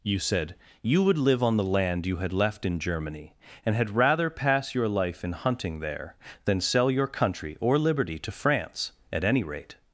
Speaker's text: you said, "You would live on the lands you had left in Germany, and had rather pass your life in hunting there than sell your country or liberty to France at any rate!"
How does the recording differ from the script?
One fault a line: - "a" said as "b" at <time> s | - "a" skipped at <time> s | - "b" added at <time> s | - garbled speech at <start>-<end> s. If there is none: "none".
- "lands" said as "land" at 1.6 s